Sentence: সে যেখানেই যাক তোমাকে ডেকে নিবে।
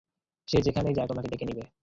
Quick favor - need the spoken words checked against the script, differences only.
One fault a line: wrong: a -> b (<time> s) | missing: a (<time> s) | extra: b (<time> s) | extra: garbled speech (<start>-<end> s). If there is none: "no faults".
no faults